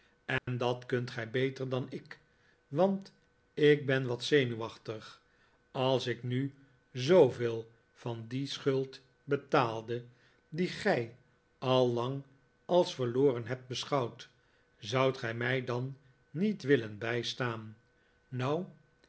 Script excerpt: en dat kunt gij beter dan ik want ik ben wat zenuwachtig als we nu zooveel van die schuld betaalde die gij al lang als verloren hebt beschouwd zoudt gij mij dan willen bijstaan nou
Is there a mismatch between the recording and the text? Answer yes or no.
yes